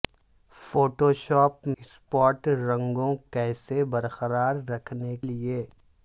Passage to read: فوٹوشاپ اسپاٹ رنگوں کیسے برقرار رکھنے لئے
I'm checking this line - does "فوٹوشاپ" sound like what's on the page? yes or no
yes